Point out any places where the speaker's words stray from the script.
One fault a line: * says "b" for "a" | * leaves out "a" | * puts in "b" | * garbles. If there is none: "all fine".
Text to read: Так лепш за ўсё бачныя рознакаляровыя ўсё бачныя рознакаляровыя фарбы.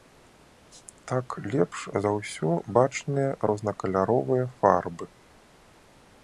* leaves out "ўсё бачныя рознакаляровыя"